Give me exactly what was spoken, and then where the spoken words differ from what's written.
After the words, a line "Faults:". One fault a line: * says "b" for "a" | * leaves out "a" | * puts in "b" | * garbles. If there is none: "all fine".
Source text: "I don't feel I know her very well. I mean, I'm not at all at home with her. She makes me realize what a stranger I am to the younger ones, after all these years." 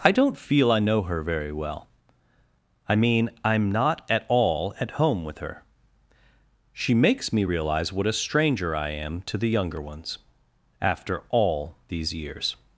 "I don't feel I know her very well. I mean, I'm not at all at home with her. She makes me realize what a stranger I am to the younger ones, after all these years."
Faults:
all fine